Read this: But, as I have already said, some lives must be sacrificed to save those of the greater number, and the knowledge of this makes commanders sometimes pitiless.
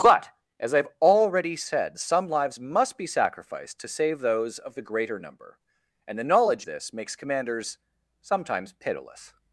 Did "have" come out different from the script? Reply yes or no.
no